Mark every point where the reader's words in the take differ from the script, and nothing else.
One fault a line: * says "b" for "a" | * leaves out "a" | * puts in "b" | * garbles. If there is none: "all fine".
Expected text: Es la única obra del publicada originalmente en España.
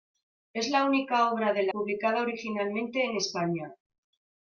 all fine